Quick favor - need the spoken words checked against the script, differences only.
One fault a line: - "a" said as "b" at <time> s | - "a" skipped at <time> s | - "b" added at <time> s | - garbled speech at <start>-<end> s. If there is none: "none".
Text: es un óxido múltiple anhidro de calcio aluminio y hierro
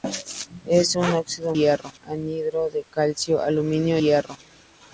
- "múltiple" said as "hierro" at 1.6 s
- "y" skipped at 4.0 s